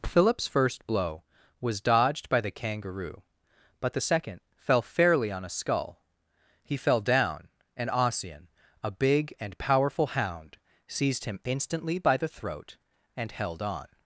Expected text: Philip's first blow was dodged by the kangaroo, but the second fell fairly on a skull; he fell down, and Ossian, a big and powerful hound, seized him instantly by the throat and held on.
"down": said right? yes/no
yes